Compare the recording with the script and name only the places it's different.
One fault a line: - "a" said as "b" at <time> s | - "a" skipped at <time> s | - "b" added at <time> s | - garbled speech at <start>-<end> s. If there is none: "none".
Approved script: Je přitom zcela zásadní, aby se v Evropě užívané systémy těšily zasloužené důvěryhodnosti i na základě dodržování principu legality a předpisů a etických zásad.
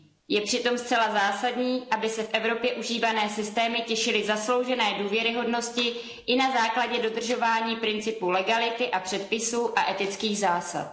none